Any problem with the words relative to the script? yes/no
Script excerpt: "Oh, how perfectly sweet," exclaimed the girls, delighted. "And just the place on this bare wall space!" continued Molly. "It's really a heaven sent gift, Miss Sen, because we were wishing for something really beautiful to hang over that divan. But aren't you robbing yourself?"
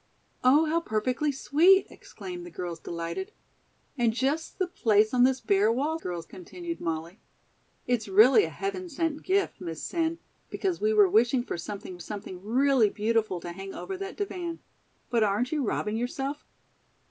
yes